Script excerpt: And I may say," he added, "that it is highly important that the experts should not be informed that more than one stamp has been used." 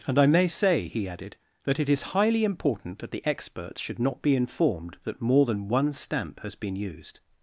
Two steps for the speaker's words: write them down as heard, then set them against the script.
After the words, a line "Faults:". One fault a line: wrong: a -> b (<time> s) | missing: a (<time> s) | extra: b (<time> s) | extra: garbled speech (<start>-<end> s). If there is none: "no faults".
And I may say," he added, "that it is highly important that the experts should not be informed that more than one stamp has been used."
Faults:
no faults